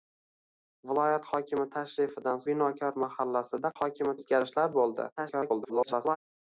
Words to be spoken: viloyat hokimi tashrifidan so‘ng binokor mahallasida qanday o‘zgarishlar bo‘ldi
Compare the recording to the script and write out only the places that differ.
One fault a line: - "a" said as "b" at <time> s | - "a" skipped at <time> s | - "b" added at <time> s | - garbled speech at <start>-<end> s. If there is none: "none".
- "so‘ng" skipped at 2.4 s
- "qanday" said as "hokimi" at 3.8 s
- garbled speech at 5.2-6.2 s